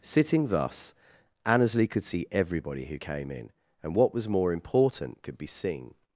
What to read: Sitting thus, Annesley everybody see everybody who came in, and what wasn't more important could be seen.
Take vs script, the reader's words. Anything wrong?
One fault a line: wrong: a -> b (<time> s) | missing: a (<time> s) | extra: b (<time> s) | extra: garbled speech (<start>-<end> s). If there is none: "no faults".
wrong: everybody -> could (1.9 s)
wrong: wasn't -> was (4.1 s)